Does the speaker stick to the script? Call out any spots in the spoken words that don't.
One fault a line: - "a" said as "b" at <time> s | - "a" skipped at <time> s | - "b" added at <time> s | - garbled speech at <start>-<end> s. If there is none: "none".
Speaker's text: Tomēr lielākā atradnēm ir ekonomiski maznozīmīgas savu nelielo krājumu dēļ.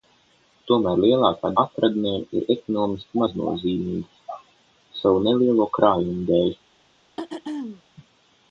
none